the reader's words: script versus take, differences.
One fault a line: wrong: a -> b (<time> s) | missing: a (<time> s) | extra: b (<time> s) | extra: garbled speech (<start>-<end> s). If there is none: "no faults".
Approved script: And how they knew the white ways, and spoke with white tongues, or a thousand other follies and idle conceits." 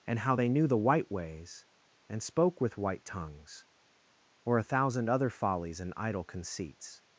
no faults